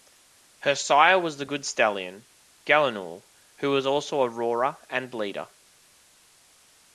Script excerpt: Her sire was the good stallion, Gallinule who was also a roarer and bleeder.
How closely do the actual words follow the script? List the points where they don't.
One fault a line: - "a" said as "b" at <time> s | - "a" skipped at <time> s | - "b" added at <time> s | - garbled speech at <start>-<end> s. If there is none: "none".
none